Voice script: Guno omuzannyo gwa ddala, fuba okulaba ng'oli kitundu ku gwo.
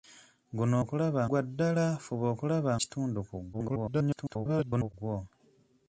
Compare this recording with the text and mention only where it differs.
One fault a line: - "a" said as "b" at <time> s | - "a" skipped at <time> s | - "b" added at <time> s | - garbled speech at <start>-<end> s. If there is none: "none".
- "omuzannyo" said as "okulaba" at 0.8 s
- "ng'oli" skipped at 2.7 s
- garbled speech at 3.5-4.9 s